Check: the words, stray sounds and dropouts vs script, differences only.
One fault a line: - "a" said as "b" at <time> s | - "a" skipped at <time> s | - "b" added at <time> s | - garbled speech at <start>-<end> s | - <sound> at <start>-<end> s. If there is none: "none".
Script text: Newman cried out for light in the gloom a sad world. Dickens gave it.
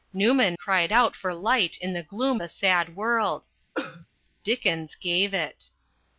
- cough at 3.7-4.1 s